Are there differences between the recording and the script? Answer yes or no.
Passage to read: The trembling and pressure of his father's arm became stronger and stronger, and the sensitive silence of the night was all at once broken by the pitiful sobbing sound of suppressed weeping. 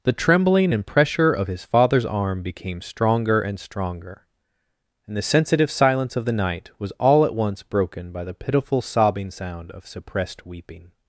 no